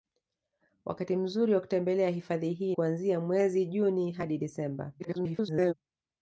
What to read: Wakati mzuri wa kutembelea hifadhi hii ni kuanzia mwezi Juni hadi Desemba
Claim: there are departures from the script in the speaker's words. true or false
true